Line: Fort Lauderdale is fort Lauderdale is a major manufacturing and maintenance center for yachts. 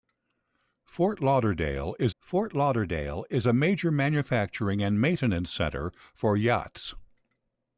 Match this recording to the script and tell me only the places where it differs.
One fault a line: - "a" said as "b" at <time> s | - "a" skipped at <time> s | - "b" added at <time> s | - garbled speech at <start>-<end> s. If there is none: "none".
none